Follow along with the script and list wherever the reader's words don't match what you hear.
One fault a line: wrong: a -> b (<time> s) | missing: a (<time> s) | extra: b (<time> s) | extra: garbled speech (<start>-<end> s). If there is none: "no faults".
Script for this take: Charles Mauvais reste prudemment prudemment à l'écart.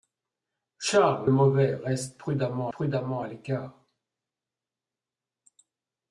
no faults